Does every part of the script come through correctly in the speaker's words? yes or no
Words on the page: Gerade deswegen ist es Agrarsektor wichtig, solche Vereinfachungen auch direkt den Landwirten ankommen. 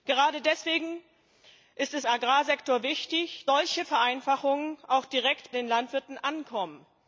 yes